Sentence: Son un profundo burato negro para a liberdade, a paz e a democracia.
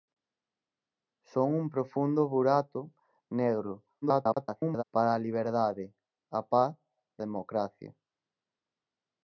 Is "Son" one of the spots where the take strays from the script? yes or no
no